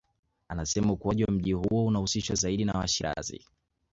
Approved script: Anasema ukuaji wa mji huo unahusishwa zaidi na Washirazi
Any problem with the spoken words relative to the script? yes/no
no